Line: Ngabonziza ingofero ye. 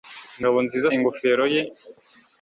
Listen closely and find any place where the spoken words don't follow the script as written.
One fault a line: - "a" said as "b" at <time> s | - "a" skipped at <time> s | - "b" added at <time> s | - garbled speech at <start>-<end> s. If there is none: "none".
none